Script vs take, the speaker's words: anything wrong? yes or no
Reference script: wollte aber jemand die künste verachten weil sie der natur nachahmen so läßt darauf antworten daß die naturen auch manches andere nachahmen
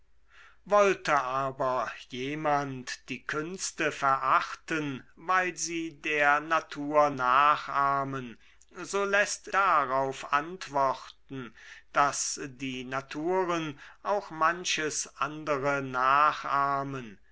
no